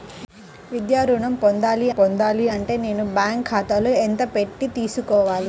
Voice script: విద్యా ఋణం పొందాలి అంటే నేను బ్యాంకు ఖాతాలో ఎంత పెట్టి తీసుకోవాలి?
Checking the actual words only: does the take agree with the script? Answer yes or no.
no